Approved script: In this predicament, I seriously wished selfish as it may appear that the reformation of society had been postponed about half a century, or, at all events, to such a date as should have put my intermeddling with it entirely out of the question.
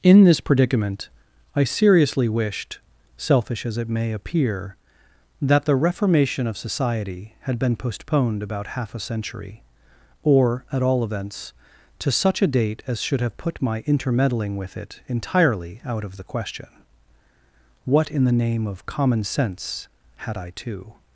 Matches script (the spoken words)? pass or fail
fail